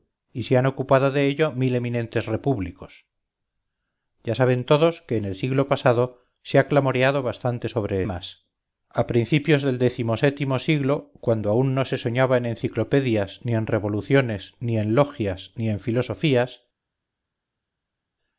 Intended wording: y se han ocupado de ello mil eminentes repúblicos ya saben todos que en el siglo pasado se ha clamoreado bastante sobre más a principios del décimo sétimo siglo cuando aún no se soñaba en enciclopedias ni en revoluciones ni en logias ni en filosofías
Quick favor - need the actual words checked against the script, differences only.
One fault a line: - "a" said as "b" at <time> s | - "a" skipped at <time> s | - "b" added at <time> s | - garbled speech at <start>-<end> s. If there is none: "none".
none